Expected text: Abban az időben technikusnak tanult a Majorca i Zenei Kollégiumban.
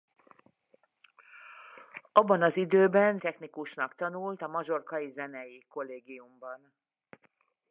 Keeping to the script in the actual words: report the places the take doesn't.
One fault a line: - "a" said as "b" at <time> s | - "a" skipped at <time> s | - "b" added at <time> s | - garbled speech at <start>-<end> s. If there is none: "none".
none